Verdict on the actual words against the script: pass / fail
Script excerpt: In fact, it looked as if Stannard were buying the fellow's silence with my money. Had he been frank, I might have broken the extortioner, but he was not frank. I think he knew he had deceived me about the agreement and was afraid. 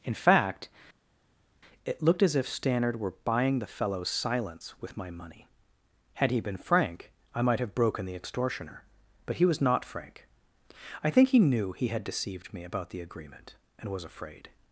pass